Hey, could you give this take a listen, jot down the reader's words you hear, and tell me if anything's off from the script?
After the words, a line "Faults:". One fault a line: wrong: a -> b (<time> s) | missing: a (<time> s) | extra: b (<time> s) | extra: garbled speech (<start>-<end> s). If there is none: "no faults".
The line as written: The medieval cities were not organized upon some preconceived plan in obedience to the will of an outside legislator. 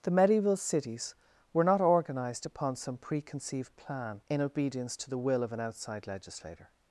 The medieval cities were not organized upon some preconceived plan in obedience to the will of an outside legislator.
Faults:
no faults